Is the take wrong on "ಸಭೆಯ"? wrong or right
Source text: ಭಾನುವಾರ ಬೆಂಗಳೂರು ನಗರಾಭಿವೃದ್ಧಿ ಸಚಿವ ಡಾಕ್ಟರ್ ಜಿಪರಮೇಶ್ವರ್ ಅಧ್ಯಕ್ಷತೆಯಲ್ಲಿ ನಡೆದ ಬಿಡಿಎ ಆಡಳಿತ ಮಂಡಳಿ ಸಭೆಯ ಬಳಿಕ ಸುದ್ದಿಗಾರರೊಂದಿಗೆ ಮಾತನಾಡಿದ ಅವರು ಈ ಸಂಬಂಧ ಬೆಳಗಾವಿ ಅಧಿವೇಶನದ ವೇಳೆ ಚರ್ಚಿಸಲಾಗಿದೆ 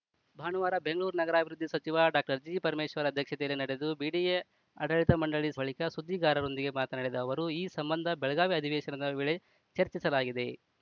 wrong